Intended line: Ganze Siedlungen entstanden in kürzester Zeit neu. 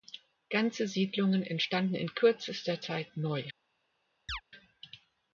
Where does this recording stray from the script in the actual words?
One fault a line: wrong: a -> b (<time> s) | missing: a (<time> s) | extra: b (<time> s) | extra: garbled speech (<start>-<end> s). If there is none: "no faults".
no faults